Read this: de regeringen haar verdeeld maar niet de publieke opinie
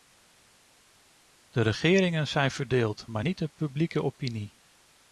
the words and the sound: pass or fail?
fail